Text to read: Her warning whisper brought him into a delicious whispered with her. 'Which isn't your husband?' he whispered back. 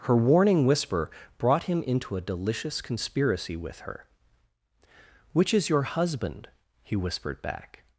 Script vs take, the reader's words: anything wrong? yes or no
yes